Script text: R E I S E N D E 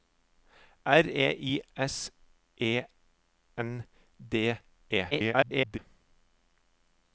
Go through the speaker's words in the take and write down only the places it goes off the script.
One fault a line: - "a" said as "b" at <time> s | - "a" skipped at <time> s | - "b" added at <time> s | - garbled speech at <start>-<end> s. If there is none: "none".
- garbled speech at 5.1-5.8 s